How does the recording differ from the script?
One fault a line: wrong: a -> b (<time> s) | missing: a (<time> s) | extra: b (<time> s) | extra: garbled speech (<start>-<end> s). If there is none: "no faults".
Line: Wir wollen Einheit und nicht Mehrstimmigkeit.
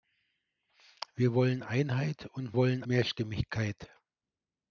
wrong: nicht -> wollen (2.6 s)